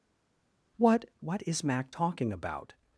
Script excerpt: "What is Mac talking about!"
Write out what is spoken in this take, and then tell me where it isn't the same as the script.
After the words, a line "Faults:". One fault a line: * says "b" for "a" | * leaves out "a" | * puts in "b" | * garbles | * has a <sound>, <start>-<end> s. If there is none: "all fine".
"What what is Mac talking about!"
Faults:
* puts in "what"